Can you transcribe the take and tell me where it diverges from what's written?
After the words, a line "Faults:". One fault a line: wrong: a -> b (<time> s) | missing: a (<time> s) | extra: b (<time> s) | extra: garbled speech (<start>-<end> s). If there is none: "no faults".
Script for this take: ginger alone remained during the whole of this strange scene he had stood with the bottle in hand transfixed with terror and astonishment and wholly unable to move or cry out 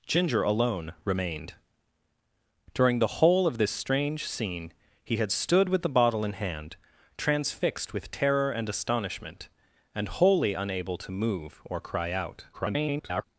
ginger alone remained during the whole of this strange scene he had stood with the bottle in hand transfixed with terror and astonishment and wholly unable to move or cry out [garbled]
Faults:
extra: garbled speech (12.5-13.2 s)